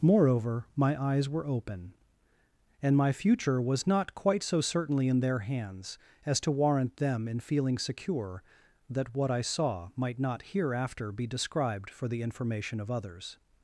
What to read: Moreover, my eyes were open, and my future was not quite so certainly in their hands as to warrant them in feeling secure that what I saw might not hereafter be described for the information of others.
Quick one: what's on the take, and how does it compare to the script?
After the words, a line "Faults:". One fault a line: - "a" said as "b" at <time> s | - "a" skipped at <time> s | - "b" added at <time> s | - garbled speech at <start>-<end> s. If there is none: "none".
Moreover, my eyes were open, and my future was not quite so certainly in their hands as to warrant them in feeling secure that what I saw might not hereafter be described for the information of others.
Faults:
none